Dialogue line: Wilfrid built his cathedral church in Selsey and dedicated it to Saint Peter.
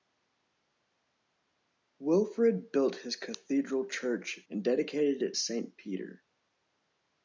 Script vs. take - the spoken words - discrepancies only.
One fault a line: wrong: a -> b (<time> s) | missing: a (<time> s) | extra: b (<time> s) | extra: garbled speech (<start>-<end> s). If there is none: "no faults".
missing: in Selsey (4.5 s)
missing: to (5.4 s)